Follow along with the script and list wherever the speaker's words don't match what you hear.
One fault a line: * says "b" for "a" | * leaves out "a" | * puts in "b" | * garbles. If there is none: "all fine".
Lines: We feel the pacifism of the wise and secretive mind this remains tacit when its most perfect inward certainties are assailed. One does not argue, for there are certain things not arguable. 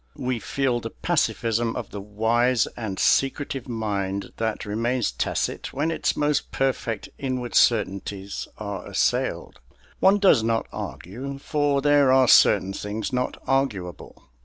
* says "that" for "this"